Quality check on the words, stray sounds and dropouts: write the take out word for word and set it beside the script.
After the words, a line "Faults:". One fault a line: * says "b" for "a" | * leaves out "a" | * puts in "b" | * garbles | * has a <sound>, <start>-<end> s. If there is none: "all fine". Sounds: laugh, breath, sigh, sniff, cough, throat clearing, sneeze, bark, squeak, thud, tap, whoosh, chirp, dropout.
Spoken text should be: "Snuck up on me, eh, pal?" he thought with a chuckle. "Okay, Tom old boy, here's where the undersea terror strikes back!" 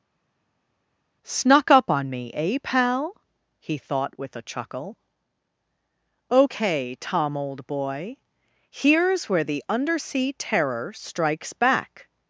"Snuck up on me, eh, pal?" he thought with a chuckle. "Okay, Tom old boy, here's where the undersea terror strikes back!"
Faults:
all fine